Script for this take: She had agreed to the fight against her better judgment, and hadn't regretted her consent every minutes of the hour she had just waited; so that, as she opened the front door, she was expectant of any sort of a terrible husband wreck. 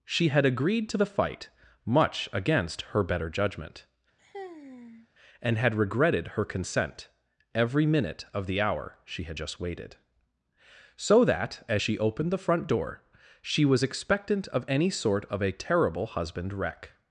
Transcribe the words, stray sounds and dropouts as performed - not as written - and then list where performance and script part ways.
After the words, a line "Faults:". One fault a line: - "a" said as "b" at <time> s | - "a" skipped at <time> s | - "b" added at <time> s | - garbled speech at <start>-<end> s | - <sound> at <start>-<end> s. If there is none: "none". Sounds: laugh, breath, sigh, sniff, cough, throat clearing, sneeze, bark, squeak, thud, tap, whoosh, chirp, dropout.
She had agreed to the fight much against her better judgment, and had regretted her consent every minute of the hour she had just waited; so that, as she opened the front door, she was expectant of any sort of a terrible husband wreck.
Faults:
- "much" added at 1.9 s
- sigh at 4.2-5.1 s
- "hadn't" said as "had" at 5.6 s
- "minutes" said as "minute" at 7.8 s